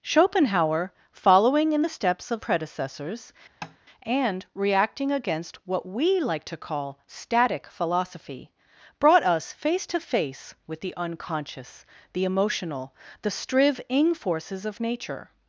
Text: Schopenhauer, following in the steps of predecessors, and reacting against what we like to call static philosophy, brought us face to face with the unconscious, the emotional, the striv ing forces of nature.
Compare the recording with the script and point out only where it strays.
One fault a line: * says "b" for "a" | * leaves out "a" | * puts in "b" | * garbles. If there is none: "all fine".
all fine